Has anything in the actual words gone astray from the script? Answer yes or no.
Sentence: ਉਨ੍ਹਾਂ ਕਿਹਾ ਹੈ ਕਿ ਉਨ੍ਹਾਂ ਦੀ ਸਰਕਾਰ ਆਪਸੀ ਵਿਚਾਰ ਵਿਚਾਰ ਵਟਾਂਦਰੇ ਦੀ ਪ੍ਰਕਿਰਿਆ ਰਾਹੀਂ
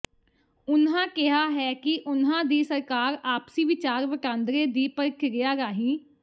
yes